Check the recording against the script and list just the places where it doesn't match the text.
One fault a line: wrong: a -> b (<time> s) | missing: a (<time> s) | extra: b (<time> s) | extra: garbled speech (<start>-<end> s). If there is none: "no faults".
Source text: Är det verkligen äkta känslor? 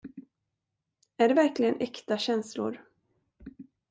no faults